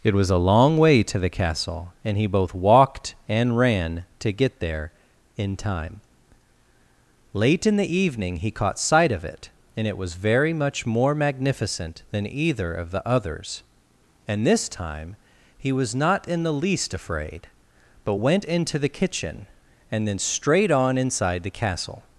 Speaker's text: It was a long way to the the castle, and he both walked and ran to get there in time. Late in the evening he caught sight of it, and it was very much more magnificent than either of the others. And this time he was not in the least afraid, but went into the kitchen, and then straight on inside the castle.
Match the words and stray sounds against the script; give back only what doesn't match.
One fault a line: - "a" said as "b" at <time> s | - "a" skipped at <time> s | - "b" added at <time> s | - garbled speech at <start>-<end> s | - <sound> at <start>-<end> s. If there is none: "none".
- "the" skipped at 1.3 s